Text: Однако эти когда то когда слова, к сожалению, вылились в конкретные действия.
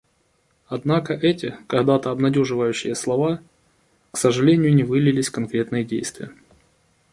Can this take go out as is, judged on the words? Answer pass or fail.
fail